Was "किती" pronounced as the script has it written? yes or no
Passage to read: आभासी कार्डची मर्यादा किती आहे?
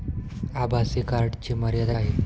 no